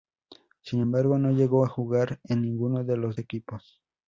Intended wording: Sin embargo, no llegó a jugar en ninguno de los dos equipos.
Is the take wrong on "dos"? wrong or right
wrong